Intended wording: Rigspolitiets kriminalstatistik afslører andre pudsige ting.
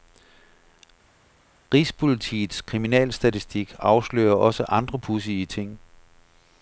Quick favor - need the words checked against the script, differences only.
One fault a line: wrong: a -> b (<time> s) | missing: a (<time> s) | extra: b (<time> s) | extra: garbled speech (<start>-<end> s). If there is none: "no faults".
extra: også (4.3 s)